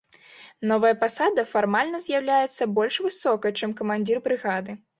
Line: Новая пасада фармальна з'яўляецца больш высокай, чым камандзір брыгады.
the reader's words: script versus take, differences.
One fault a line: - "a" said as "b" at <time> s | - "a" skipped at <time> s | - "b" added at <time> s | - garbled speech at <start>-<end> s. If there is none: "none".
none